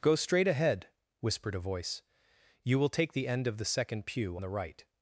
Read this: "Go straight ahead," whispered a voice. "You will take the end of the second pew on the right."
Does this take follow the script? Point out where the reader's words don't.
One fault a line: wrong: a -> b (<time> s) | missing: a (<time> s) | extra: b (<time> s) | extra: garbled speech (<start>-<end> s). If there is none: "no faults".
missing: on (4.4 s)